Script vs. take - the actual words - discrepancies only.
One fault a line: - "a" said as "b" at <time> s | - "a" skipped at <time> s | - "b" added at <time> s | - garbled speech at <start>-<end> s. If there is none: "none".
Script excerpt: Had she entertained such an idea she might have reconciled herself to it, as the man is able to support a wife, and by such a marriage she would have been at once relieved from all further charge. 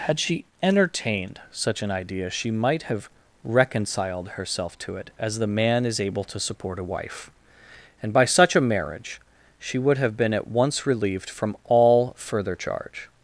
none